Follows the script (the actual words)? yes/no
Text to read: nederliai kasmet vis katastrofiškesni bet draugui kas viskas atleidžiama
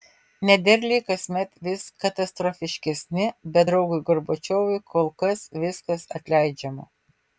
no